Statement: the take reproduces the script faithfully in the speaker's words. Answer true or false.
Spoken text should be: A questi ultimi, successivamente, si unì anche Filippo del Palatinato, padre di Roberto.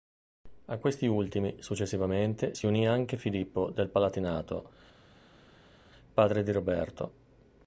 true